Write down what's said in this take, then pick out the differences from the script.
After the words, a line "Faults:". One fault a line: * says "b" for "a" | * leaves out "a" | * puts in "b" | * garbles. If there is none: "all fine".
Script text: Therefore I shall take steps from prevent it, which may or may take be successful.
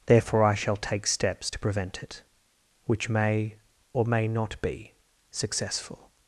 Therefore I shall take steps to prevent it, which may or may not be successful.
Faults:
* says "to" for "from"
* says "not" for "take"